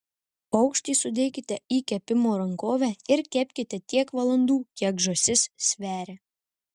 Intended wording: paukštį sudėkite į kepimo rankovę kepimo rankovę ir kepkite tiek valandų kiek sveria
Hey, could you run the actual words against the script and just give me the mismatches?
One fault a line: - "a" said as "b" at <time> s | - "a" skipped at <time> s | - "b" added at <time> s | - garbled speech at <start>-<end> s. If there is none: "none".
- "kepimo rankovę" skipped at 2.9 s
- "žąsis" added at 5.1 s